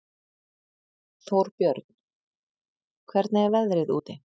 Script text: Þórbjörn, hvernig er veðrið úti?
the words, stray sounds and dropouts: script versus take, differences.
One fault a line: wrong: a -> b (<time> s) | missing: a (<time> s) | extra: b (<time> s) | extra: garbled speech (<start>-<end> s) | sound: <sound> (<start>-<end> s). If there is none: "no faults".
no faults